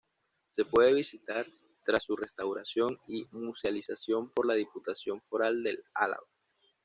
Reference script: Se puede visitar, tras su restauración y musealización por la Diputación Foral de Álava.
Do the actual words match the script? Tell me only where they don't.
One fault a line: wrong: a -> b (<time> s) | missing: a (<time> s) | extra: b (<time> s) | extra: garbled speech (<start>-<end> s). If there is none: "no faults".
no faults